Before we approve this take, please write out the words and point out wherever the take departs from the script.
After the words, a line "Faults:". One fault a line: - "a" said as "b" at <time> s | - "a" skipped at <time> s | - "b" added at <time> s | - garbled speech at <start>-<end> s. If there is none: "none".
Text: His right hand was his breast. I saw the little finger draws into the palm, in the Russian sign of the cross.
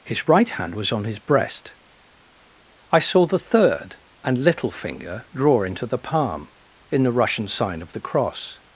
His right hand was on his breast. I saw the third and little finger draw into the palm, in the Russian sign of the cross.
Faults:
- "on" added at 0.9 s
- "third and" added at 3.4 s
- "draws" said as "draw" at 5.3 s